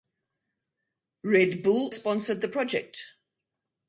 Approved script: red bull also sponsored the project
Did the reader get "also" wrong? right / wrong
wrong